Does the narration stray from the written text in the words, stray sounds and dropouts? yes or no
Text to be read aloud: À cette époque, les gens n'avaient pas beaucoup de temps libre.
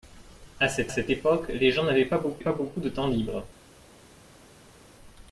yes